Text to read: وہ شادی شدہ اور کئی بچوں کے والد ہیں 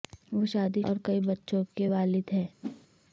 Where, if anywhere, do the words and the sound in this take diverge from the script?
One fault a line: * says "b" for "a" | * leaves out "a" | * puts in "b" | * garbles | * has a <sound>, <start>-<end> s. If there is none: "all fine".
* leaves out "شدہ"
* has a whoosh, 2.6-2.9 s